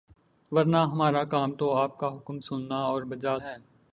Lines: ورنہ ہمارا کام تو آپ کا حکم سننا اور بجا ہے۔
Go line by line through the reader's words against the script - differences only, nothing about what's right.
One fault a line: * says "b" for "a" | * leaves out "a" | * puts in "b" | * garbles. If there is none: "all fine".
all fine